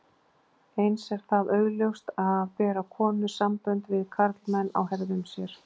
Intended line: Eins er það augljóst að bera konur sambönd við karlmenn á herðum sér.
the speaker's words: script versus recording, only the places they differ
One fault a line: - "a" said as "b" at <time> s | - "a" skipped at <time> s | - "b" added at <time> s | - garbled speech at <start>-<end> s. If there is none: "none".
none